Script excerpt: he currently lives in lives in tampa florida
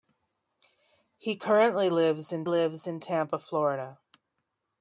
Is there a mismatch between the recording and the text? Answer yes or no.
no